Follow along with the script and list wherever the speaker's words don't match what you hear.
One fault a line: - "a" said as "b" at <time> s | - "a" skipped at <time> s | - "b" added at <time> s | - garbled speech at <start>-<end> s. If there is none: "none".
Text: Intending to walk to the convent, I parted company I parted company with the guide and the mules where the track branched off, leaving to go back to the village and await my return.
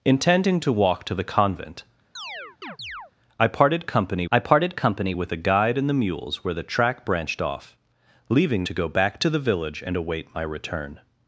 none